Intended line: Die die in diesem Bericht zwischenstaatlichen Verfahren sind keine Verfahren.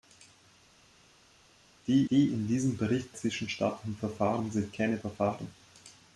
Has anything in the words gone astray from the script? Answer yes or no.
no